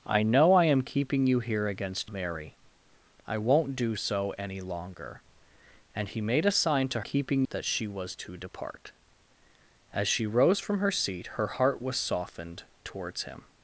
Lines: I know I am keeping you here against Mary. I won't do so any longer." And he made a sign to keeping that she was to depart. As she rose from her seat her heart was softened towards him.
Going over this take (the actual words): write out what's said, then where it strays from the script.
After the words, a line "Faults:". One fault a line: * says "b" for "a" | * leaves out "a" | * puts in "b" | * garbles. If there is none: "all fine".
I know I am keeping you here against Mary. I won't do so any longer." And he made a sign to keeping that she was to depart. As she rose from her seat her heart was softened towards him.
Faults:
all fine